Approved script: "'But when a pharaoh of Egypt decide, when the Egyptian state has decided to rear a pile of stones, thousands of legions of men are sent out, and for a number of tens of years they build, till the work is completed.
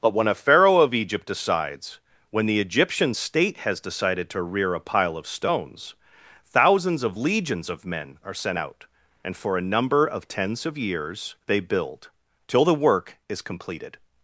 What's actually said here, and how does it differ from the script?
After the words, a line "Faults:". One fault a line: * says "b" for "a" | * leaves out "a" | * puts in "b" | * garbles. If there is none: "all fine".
"'But when a pharaoh of Egypt decides, when the Egyptian state has decided to rear a pile of stones, thousands of legions of men are sent out, and for a number of tens of years they build, till the work is completed.
Faults:
* says "decides" for "decide"